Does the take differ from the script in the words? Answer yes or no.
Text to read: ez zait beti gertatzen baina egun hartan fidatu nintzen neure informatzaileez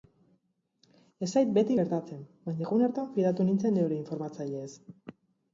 no